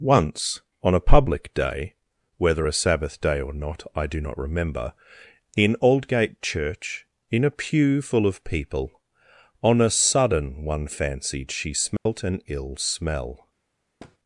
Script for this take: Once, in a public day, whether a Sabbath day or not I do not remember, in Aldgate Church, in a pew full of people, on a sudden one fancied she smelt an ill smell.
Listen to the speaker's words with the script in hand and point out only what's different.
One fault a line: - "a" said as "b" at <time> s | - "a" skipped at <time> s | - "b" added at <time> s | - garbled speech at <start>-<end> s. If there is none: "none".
- "in" said as "on" at 0.8 s